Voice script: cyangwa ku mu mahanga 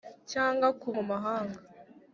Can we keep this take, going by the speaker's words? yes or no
yes